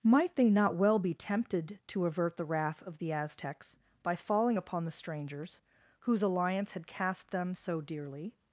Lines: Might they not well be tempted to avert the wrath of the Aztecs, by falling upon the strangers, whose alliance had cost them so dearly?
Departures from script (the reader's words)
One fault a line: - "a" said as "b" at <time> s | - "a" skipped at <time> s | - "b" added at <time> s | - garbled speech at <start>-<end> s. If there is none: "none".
- "cost" said as "cast" at 6.9 s